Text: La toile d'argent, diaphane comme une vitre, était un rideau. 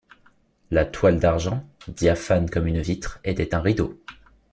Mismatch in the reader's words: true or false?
false